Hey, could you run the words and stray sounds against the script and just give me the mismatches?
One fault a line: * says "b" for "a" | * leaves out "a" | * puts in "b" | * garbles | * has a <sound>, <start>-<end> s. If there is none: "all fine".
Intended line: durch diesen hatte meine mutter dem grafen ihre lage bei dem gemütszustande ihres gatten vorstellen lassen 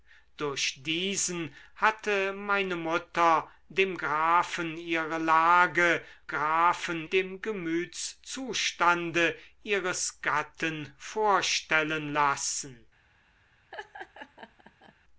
* says "grafen" for "bei"
* has a laugh, 13.7-15.0 s